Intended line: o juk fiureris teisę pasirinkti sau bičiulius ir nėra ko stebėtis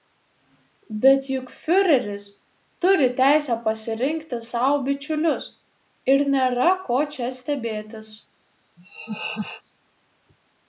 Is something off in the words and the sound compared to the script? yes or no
yes